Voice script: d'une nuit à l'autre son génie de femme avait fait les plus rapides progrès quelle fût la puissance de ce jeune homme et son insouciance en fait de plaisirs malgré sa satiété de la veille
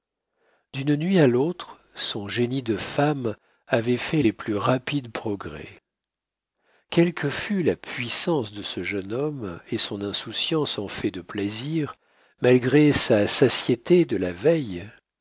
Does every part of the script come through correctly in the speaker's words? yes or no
no